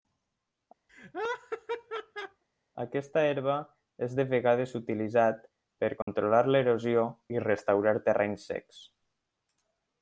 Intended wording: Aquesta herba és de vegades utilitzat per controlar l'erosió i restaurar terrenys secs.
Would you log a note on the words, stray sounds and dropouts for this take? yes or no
yes